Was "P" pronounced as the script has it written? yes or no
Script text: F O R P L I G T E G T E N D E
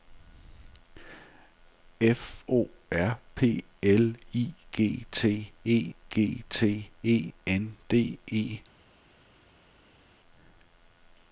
yes